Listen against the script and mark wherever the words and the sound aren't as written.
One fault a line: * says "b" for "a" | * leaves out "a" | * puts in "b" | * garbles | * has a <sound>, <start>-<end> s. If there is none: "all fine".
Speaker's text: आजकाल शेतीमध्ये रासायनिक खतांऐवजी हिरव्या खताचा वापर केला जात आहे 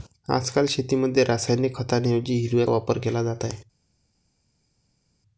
* leaves out "खताचा"